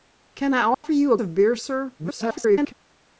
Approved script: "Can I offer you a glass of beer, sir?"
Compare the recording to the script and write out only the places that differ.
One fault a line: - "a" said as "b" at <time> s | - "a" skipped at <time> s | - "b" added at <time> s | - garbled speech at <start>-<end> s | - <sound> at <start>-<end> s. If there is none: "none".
- dropout at 0.7-0.8 s
- "glass" skipped at 1.1 s
- garbled speech at 2.0-2.7 s